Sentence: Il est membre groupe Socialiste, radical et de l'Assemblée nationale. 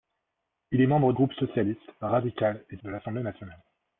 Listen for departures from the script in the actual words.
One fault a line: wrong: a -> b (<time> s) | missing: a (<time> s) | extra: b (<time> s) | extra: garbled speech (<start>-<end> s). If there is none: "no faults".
no faults